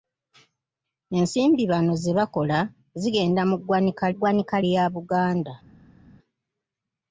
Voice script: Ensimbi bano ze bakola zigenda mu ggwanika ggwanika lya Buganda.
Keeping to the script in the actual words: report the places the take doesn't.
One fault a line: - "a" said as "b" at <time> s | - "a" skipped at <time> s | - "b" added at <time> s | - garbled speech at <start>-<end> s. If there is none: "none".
none